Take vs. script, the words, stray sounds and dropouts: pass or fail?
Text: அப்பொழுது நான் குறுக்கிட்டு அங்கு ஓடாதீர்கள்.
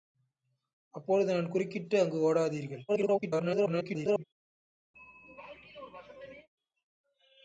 fail